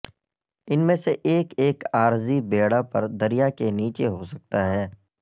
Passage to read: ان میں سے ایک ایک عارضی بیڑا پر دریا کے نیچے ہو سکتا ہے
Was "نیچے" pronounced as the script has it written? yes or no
yes